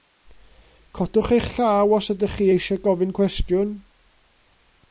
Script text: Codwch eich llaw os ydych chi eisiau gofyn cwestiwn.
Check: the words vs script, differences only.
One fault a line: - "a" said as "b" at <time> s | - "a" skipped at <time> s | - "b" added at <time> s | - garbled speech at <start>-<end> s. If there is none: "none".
none